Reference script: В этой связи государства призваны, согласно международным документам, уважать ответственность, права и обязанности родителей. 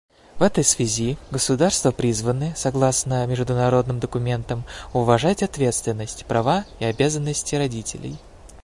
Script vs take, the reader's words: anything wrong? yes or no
no